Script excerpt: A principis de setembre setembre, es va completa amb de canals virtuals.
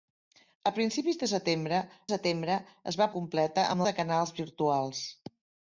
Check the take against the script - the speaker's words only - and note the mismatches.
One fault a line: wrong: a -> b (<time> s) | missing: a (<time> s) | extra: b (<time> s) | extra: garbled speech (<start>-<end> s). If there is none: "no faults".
no faults